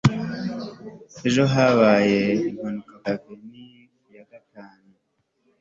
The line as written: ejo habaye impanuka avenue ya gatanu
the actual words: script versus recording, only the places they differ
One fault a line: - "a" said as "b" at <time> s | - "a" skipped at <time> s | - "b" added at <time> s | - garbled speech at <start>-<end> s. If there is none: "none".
none